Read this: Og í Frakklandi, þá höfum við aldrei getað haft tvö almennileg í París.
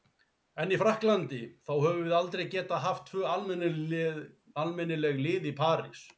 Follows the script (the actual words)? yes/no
no